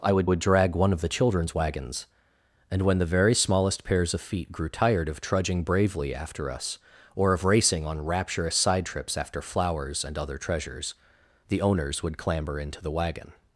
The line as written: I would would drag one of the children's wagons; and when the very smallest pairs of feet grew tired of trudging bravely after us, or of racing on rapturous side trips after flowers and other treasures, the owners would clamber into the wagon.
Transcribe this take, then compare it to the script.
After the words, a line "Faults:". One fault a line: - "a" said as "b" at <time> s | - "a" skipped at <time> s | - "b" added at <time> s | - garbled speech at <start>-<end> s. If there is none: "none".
I would would drag one of the children's wagons; and when the very smallest pairs of feet grew tired of trudging bravely after us, or of racing on rapturous side trips after flowers and other treasures, the owners would clamber into the wagon.
Faults:
none